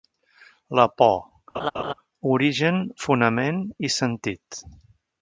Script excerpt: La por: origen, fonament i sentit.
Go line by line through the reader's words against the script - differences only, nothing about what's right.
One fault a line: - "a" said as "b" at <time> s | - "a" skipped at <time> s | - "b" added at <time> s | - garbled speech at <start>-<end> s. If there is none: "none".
none